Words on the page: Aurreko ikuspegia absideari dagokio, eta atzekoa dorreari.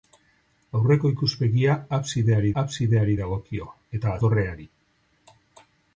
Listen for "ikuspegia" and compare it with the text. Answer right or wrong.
right